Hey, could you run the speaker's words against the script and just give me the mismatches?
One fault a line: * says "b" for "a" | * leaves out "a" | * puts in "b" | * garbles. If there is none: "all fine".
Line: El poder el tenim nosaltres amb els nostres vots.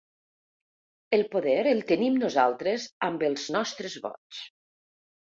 all fine